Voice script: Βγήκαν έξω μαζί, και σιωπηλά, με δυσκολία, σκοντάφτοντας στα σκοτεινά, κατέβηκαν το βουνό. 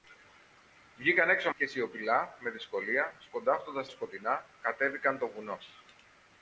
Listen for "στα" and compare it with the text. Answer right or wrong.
wrong